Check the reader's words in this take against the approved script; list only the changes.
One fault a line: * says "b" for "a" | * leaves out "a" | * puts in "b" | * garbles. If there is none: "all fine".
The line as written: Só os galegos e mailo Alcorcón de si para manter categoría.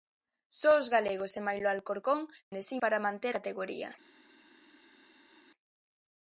all fine